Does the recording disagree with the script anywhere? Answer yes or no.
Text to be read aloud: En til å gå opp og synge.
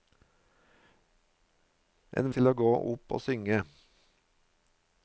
no